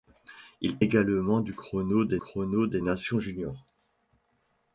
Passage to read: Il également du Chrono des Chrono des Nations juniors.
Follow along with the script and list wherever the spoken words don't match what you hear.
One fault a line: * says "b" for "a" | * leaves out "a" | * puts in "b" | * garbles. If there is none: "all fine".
all fine